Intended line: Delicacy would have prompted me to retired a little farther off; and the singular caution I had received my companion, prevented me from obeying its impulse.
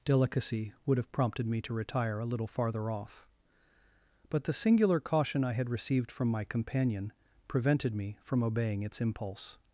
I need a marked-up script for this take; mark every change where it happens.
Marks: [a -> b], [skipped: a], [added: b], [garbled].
Delicacy would have prompted me to [retired -> retire] a little farther off; [and -> but] the singular caution I had received [added: from] my companion, prevented me from obeying its impulse.